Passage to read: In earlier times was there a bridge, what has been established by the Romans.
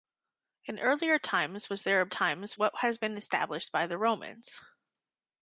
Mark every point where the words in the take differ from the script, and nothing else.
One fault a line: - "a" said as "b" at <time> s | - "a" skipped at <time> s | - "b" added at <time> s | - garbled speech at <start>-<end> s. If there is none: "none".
- "bridge" said as "times" at 2.1 s